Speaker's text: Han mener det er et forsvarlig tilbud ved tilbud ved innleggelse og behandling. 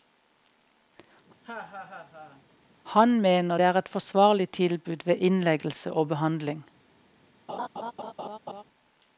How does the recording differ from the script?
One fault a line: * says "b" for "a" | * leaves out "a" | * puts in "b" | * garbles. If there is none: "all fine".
* leaves out "tilbud ved"